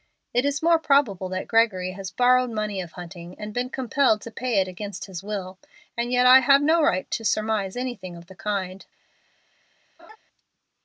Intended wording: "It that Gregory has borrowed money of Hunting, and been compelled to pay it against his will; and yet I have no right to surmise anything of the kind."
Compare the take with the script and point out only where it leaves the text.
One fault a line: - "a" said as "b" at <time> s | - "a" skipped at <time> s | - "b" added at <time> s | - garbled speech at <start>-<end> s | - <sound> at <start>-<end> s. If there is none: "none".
- "is more probable" added at 0.5 s
- laugh at 10.0-10.2 s